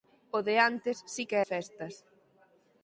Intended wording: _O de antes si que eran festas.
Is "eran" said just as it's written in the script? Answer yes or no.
no